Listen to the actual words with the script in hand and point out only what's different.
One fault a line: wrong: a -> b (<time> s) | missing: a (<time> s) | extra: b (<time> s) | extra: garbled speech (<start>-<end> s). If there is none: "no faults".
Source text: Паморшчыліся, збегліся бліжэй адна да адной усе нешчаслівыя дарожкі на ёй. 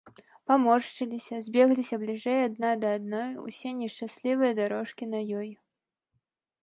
no faults